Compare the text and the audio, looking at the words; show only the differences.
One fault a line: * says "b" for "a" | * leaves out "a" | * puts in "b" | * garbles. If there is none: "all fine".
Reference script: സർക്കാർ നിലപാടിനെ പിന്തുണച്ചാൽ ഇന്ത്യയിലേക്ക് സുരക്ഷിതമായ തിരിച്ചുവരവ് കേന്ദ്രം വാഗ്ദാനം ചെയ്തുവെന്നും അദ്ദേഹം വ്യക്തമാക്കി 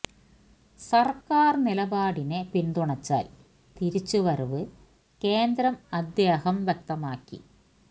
* leaves out "ഇന്ത്യയിലേക്ക് സുരക്ഷിതമായ"
* leaves out "വാഗ്ദാനം ചെയ്തുവെന്നും"